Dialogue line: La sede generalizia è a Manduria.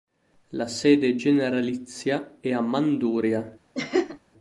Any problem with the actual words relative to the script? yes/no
no